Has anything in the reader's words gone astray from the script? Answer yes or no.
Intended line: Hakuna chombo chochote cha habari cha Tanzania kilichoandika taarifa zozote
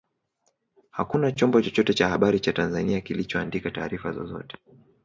no